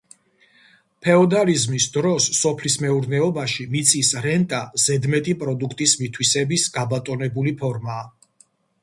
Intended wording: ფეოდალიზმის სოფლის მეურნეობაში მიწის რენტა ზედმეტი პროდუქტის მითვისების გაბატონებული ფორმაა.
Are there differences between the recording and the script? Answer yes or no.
yes